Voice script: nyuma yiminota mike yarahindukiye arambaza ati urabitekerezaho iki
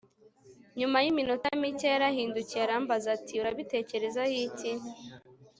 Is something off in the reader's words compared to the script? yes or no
no